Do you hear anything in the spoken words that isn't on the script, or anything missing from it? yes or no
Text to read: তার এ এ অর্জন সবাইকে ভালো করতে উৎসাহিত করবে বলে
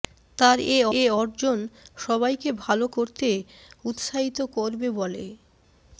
no